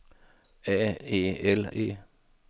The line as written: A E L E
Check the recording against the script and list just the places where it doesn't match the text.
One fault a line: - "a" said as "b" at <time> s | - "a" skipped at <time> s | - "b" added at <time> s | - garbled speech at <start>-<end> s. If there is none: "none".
none